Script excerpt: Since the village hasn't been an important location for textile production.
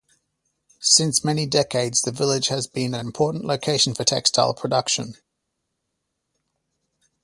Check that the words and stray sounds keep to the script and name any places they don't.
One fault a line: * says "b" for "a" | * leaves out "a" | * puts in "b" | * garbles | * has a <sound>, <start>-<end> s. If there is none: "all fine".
* puts in "many decades"
* says "has" for "hasn't"